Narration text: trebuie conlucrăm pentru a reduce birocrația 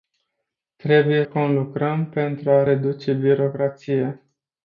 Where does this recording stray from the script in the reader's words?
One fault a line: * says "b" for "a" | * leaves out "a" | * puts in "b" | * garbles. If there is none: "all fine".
all fine